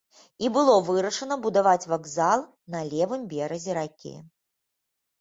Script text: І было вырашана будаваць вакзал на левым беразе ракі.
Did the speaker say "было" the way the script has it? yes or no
yes